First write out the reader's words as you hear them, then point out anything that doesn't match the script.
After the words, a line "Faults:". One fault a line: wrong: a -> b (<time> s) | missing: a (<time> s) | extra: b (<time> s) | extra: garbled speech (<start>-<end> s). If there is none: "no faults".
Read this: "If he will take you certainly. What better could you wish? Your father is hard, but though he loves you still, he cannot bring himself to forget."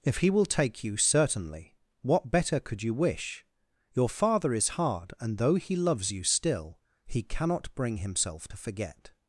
"If he will take you certainly. What better could you wish? Your father is hard, and though he loves you still, he cannot bring himself to forget."
Faults:
wrong: but -> and (5.2 s)